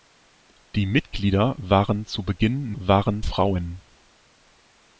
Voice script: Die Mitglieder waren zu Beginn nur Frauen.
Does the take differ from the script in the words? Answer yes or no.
yes